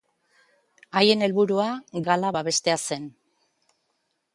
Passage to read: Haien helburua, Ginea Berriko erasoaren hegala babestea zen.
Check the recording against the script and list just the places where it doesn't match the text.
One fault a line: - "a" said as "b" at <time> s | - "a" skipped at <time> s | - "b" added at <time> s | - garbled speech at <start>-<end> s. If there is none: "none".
- "Ginea Berriko erasoaren" skipped at 1.7 s